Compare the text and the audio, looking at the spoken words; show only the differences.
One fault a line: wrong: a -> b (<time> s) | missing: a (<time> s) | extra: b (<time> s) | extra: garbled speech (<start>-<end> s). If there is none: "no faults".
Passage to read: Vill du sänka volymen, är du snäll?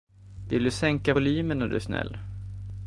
no faults